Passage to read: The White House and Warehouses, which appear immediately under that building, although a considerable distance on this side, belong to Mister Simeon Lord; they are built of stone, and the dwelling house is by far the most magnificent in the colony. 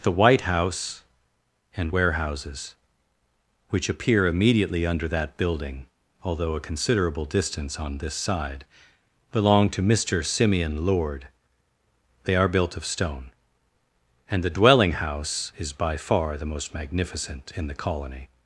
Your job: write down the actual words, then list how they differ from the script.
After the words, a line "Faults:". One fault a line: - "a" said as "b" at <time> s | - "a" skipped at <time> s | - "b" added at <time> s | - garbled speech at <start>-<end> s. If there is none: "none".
The White House and Warehouses, which appear immediately under that building, although a considerable distance on this side, belong to Mister Simeon Lord; they are built of stone, and the dwelling house is by far the most magnificent in the colony.
Faults:
none